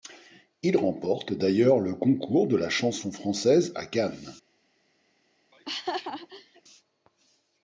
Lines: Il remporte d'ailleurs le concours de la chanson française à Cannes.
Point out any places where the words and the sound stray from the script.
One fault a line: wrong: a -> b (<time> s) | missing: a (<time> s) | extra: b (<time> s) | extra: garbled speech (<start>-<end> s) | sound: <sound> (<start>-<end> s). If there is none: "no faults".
sound: laugh (5.5-6.6 s)